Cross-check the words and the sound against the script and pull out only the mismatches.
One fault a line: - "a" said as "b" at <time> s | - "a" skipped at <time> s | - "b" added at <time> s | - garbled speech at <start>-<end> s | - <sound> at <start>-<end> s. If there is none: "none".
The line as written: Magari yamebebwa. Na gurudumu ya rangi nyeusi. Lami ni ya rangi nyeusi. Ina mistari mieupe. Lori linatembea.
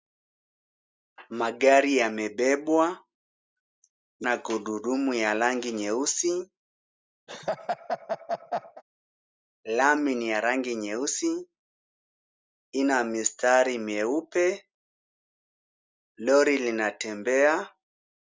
- laugh at 7.3-8.8 s